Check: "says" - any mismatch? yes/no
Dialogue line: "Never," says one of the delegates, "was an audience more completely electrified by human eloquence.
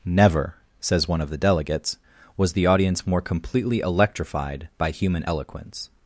no